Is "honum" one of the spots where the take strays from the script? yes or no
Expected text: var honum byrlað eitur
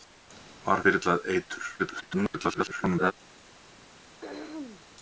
yes